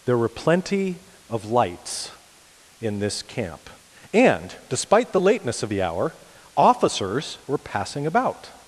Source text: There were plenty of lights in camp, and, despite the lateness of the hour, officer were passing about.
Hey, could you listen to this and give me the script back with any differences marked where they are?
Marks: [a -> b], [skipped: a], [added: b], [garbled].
There were plenty of lights in [added: this] camp, and, despite the lateness of the hour, [officer -> officers] were passing about.